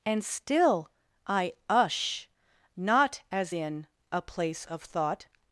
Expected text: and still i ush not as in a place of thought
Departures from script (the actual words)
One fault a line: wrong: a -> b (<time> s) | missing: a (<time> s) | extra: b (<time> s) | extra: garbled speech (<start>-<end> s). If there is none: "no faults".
no faults